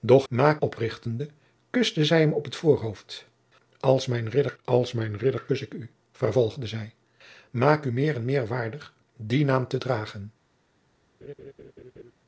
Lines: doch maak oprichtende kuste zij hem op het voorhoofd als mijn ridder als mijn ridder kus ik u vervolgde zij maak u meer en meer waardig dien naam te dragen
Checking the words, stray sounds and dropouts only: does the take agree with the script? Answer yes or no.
no